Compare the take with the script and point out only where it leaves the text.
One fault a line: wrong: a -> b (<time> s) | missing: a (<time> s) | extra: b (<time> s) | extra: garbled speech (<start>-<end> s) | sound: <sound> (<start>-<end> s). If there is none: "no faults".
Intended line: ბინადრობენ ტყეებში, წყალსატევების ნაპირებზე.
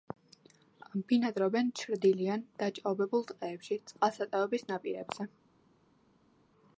extra: ჩრდილიან დაჭაობებულ (1.8 s)